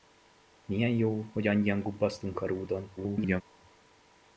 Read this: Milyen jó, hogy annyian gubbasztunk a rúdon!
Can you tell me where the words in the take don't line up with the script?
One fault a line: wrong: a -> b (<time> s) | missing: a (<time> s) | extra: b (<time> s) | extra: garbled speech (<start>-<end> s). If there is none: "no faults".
extra: garbled speech (3.0-3.4 s)